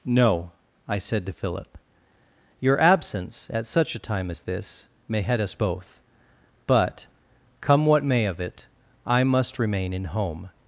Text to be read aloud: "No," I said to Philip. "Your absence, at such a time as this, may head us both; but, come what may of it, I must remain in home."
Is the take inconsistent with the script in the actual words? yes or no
no